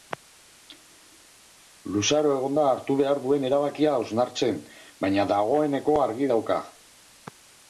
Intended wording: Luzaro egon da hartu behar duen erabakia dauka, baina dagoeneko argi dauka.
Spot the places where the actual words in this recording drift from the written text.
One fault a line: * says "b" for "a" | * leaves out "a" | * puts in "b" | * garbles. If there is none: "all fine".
* says "hausnartzen" for "dauka"